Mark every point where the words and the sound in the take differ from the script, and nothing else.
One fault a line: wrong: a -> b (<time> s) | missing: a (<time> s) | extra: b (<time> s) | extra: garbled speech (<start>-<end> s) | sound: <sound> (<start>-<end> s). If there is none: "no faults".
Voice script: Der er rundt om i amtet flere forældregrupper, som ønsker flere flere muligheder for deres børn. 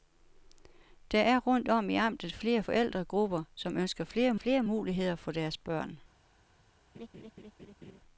sound: laugh (6.9-8.0 s)